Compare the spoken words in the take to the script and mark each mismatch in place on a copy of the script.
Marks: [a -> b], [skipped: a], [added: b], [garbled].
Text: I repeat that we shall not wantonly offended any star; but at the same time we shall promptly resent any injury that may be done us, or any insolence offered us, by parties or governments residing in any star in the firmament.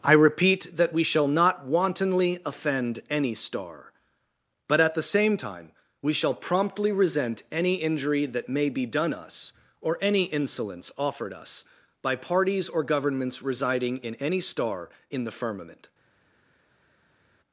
I repeat that we shall not wantonly [offended -> offend] any star; but at the same time we shall promptly resent any injury that may be done us, or any insolence offered us, by parties or governments residing in any star in the firmament.